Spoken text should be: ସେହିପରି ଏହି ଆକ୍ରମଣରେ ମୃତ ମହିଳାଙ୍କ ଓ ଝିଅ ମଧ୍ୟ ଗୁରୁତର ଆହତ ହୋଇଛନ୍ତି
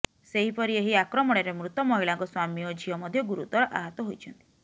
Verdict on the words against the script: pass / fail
fail